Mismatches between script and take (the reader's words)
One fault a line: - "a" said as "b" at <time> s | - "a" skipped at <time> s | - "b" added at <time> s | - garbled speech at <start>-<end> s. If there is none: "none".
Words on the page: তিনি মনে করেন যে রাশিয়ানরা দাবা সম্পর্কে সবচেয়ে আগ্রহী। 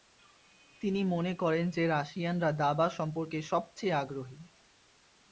none